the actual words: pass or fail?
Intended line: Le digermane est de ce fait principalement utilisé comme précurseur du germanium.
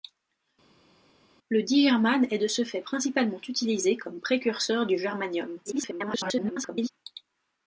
fail